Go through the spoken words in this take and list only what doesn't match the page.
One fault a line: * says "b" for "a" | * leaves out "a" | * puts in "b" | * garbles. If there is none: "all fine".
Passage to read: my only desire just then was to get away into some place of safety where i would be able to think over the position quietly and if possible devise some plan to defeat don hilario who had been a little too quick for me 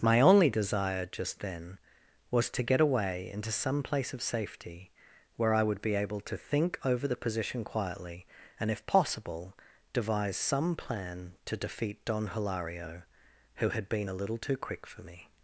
all fine